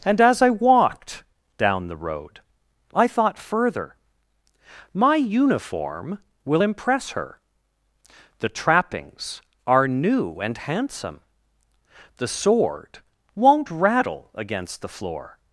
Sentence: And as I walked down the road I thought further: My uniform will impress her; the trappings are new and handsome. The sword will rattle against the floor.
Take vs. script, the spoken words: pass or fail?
fail